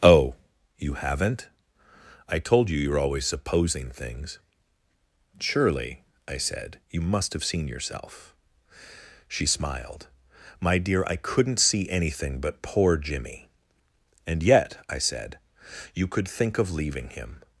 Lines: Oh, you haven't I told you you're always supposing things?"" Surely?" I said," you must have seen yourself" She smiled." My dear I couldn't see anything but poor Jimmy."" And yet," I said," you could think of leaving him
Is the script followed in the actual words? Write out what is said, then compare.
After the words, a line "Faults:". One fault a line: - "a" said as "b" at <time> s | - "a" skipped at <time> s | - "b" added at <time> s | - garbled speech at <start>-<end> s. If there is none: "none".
Oh, you haven't I told you you're always supposing things?"" Surely?" I said," you must have seen yourself" She smiled." My dear I couldn't see anything but poor Jimmy."" And yet," I said," you could think of leaving him
Faults:
none